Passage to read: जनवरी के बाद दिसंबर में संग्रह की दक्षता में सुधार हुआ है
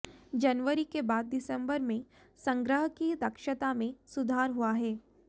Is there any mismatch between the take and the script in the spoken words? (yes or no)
no